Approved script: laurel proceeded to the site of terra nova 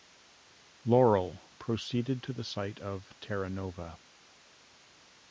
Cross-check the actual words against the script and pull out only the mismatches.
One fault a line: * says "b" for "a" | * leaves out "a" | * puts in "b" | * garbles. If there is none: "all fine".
all fine